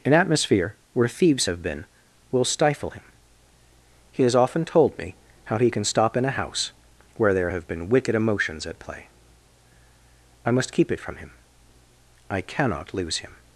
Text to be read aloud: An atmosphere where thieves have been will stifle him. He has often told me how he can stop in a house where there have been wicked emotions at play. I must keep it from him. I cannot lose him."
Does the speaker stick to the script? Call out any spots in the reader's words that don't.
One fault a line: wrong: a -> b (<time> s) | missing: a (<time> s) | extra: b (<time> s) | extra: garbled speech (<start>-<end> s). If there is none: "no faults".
no faults